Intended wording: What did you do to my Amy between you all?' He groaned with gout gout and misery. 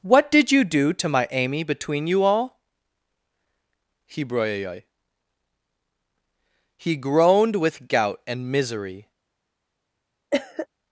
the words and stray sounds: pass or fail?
fail